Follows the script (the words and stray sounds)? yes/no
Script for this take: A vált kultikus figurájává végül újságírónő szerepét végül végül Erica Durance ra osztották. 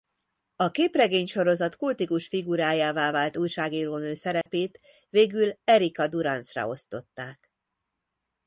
no